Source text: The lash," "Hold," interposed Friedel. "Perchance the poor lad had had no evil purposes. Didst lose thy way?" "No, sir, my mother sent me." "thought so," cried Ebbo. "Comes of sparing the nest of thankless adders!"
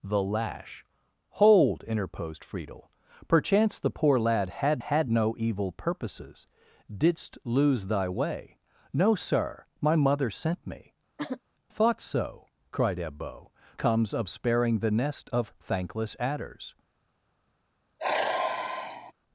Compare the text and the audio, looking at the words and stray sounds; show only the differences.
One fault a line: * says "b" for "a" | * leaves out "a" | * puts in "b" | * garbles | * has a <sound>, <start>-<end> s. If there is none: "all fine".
* has a throat clearing, 11.2-11.4 s
* has a sigh, 18.0-19.1 s